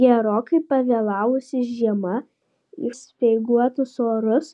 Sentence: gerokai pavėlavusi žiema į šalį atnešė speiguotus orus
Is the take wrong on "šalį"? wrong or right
wrong